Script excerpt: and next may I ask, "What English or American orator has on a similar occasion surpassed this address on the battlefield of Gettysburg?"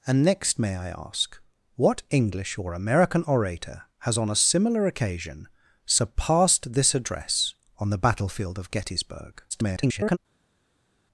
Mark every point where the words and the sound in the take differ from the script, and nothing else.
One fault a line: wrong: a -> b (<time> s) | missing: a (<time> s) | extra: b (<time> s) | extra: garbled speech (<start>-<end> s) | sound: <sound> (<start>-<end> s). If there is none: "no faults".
extra: garbled speech (9.5-10.2 s)